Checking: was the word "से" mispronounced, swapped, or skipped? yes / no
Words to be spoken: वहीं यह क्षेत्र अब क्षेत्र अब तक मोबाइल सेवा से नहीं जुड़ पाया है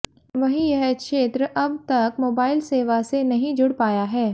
no